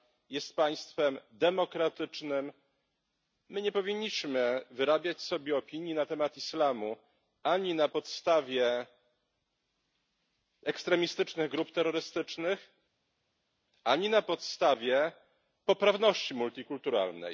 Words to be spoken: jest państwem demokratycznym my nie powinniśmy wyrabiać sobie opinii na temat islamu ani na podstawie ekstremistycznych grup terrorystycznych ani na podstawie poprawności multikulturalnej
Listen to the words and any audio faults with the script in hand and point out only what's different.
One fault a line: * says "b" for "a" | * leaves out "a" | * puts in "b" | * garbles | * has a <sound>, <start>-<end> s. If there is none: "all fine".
all fine